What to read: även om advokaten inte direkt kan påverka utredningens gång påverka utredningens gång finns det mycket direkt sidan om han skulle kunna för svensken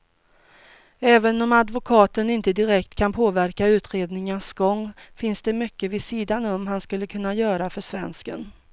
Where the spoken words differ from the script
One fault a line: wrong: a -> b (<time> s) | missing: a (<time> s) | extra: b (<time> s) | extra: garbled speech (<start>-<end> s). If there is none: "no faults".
missing: påverka utredningens gång (4.9 s)
wrong: direkt -> vid (5.9 s)
extra: göra (7.3 s)